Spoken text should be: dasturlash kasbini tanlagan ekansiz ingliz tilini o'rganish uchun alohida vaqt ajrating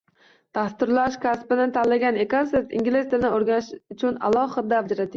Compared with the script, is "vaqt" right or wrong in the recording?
wrong